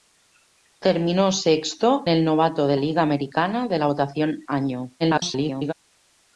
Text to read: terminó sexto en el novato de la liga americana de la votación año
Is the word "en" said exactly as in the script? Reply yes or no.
no